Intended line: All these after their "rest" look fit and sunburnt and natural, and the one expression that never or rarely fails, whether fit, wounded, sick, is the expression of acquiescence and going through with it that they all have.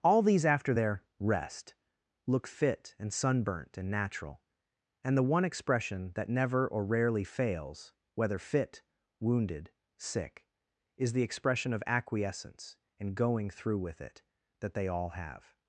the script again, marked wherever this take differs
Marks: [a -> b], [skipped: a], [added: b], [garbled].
All these after their "rest" look fit and sunburnt and natural, and the one expression that never or rarely fails, whether fit, wounded, sick, is the expression of acquiescence and going through with it that they all have.